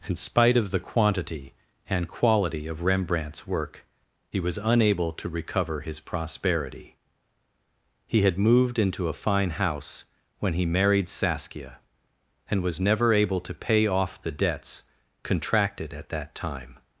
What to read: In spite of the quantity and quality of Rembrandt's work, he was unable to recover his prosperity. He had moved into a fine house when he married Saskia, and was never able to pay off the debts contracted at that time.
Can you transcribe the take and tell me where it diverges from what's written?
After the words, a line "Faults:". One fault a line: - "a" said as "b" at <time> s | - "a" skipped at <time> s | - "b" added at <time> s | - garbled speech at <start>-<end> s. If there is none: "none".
In spite of the quantity and quality of Rembrandt's work, he was unable to recover his prosperity. He had moved into a fine house when he married Saskia, and was never able to pay off the debts contracted at that time.
Faults:
none